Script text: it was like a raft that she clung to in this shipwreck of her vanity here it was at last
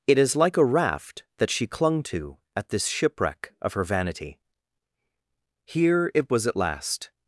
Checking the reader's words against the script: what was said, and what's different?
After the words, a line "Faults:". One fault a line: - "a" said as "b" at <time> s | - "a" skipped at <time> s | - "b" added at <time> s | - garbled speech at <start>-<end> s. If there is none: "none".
it is like a raft that she clung to at this shipwreck of her vanity here it was at last
Faults:
- "was" said as "is" at 0.2 s
- "in" said as "at" at 2.5 s